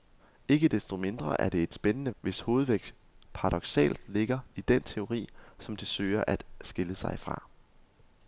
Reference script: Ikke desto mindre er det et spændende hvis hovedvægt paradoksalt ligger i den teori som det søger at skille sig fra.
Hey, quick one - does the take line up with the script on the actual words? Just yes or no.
yes